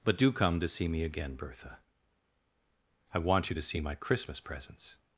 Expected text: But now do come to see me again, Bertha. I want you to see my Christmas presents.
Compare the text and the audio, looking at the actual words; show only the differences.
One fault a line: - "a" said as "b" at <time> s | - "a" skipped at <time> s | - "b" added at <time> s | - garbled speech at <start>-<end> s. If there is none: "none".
- "now" skipped at 0.2 s